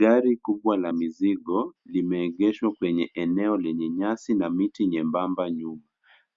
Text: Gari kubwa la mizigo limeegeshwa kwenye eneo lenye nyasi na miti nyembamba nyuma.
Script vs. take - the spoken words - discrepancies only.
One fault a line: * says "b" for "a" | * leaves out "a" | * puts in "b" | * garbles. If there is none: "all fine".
all fine